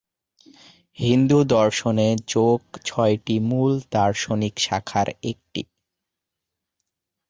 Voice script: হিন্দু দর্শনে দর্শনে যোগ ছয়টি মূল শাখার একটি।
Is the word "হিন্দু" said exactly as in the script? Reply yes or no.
yes